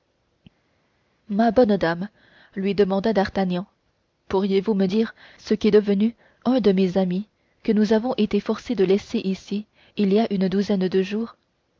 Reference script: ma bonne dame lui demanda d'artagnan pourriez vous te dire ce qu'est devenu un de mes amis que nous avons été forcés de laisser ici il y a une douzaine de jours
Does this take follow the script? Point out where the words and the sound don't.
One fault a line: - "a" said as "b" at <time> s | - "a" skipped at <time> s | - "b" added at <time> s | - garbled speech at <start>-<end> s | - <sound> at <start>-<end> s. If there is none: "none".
- "te" said as "me" at 4.7 s